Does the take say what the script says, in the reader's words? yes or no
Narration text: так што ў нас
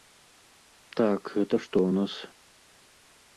no